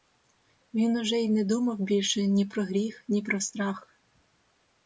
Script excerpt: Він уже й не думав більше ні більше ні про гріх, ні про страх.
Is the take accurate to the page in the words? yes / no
no